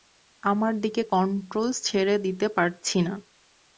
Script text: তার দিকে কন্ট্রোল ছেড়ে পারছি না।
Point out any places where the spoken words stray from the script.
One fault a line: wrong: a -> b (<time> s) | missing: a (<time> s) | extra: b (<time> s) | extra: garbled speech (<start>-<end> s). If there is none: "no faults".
wrong: তার -> আমার (0.4 s)
extra: দিতে (2.2 s)